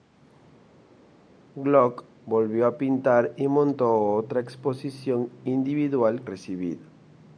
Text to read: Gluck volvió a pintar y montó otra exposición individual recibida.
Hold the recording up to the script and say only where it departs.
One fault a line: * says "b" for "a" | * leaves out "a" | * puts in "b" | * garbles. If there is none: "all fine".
all fine